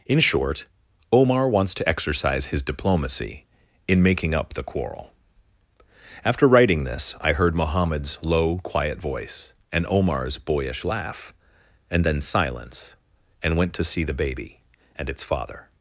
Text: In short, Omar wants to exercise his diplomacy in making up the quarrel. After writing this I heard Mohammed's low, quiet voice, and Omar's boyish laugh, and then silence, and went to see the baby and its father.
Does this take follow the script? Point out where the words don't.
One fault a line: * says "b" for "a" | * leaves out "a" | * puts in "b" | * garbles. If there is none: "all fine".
all fine